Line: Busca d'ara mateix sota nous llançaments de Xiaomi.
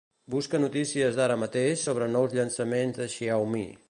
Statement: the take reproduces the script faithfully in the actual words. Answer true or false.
false